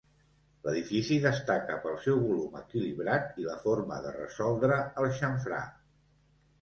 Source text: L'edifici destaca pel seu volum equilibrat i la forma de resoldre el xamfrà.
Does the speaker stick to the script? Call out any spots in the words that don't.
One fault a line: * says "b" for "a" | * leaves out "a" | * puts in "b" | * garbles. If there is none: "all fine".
all fine